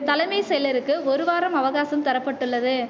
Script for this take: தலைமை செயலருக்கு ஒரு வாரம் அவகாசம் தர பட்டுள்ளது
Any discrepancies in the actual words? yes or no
no